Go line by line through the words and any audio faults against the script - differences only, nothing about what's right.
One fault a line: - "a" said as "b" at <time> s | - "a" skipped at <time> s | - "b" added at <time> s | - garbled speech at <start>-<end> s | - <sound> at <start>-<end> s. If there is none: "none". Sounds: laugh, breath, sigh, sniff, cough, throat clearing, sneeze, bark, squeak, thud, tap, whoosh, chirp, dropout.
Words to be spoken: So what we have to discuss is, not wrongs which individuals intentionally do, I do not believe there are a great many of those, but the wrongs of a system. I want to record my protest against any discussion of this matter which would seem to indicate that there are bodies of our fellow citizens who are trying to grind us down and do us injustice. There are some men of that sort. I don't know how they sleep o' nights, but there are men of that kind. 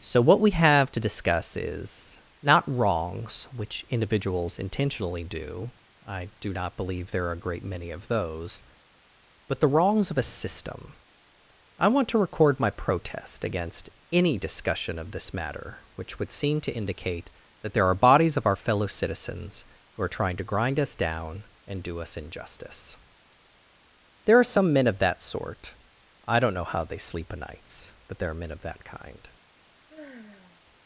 - sigh at 29.9-30.6 s